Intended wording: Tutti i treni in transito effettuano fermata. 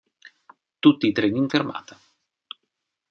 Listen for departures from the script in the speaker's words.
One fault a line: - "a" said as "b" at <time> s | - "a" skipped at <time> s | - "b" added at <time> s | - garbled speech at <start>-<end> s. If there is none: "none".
- "transito effettuano" skipped at 1.5 s